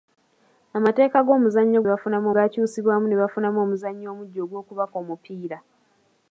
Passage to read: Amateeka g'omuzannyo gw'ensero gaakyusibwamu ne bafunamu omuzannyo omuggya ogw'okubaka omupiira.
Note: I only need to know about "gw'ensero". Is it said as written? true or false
false